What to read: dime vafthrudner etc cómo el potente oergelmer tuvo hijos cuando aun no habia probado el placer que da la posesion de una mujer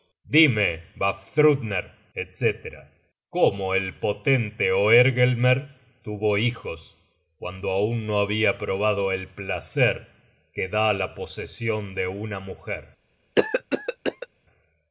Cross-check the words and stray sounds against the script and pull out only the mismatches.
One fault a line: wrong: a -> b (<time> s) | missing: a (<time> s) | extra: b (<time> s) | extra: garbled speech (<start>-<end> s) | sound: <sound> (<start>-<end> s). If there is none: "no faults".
sound: cough (13.4-14.3 s)